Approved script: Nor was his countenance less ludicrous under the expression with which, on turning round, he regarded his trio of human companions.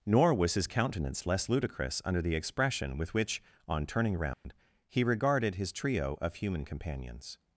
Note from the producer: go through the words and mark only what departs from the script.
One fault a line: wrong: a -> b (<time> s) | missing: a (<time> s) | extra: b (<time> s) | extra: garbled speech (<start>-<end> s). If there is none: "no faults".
no faults